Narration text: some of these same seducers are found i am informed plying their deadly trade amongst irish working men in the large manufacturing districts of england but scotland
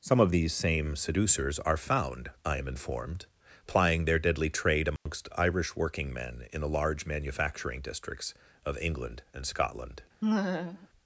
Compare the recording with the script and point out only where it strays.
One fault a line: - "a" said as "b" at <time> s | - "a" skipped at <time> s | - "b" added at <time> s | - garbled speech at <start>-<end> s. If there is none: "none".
- "but" said as "and" at 9.3 s